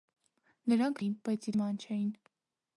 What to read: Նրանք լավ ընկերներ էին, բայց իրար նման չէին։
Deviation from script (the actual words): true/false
true